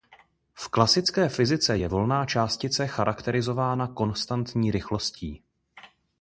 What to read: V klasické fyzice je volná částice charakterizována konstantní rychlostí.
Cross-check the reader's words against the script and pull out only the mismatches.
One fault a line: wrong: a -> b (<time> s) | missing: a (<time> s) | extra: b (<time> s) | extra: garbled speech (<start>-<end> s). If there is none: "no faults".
no faults